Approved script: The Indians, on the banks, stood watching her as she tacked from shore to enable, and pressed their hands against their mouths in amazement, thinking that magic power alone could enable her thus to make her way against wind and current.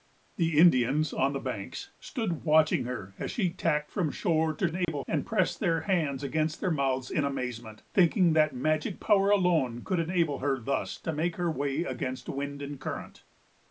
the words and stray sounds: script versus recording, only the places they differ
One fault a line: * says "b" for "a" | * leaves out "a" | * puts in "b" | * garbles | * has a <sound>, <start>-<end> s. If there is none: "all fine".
* has a dropout, 4.8-4.9 s